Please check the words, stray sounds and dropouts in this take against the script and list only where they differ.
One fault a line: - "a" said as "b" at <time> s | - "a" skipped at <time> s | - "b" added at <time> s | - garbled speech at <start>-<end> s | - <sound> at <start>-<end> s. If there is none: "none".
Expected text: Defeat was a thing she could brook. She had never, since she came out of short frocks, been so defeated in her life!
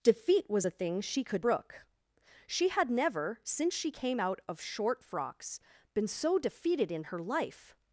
none